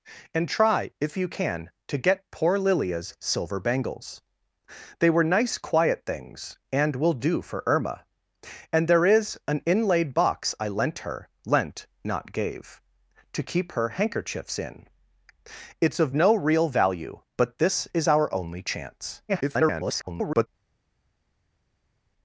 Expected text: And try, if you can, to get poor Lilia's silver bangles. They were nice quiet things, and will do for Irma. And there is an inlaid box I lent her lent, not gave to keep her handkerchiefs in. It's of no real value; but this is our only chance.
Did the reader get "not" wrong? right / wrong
right